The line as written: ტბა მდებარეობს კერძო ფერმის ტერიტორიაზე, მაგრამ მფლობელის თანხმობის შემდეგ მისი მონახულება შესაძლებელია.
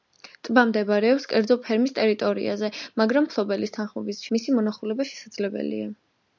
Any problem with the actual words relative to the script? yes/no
yes